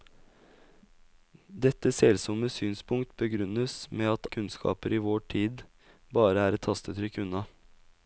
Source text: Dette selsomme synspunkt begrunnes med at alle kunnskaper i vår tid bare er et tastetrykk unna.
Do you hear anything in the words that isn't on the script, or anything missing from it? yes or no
yes